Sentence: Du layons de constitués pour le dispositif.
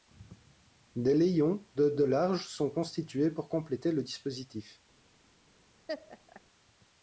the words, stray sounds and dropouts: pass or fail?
fail